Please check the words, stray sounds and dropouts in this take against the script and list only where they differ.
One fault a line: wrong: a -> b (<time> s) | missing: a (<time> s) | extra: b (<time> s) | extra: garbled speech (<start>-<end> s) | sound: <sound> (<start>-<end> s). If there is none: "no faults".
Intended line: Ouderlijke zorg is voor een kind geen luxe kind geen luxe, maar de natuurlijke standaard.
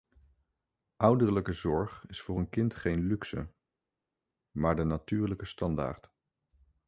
missing: kind geen luxe (3.5 s)